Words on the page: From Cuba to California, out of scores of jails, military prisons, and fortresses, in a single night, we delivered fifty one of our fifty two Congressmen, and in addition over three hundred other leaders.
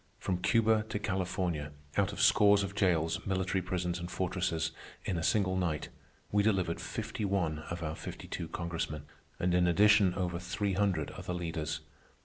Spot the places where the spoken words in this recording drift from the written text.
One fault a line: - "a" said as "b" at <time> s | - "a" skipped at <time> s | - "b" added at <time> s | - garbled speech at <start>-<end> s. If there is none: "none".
none